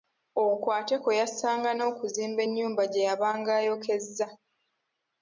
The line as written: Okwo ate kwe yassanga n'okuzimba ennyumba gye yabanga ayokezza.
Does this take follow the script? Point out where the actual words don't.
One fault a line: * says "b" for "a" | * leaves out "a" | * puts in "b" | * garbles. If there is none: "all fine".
all fine